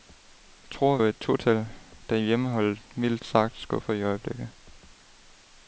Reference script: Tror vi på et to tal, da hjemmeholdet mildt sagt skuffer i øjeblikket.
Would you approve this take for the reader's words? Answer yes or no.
no